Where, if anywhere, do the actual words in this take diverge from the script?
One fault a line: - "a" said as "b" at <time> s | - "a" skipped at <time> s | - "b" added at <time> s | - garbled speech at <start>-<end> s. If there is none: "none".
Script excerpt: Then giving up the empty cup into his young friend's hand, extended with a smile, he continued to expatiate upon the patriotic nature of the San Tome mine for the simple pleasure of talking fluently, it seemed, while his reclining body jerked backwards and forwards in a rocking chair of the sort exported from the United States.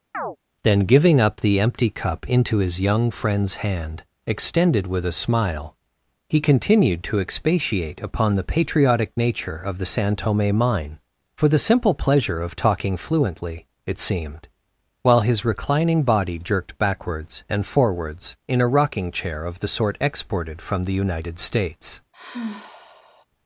none